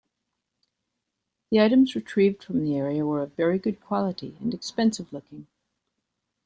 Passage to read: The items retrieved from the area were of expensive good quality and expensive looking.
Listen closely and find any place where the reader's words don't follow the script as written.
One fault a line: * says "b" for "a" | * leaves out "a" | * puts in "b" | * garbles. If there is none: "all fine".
* says "very" for "expensive"